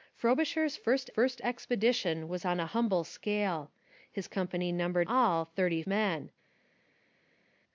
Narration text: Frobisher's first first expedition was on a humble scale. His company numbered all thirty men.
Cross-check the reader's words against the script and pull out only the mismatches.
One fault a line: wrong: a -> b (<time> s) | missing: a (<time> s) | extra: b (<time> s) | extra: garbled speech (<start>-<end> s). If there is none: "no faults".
no faults